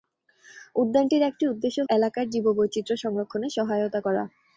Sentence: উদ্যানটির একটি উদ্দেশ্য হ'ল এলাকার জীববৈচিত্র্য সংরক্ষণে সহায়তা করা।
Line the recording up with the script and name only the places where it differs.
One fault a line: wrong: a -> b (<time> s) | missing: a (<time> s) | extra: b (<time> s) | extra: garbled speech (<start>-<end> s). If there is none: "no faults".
missing: হ'ল (1.8 s)